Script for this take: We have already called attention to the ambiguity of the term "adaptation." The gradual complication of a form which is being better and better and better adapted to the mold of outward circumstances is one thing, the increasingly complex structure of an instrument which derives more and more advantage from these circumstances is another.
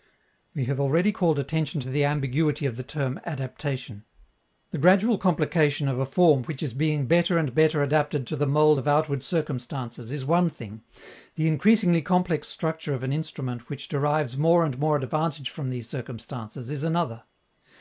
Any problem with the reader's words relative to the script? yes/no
yes